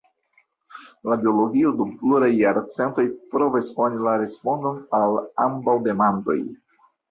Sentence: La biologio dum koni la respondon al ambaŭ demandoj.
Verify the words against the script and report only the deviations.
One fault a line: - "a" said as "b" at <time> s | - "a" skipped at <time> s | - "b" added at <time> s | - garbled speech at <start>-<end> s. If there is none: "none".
- "pluraj jarcentoj provas" added at 2.0 s